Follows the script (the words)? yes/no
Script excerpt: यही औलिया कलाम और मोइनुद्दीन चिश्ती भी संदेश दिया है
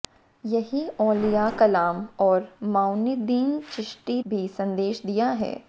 yes